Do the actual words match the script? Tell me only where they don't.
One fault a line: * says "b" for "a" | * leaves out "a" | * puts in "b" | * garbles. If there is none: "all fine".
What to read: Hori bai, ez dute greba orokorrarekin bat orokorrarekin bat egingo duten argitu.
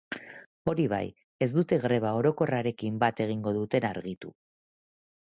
* leaves out "orokorrarekin bat"